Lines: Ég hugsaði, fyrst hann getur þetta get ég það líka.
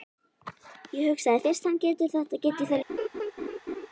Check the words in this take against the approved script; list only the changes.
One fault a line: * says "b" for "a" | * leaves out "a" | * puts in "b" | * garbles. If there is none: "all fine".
all fine